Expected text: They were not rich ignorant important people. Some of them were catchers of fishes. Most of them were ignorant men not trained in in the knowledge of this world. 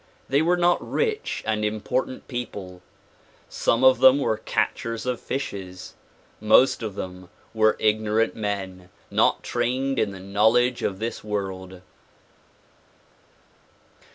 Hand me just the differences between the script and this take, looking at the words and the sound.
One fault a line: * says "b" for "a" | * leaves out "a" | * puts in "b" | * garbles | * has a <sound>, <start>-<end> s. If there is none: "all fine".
* says "and" for "ignorant"
* leaves out "in"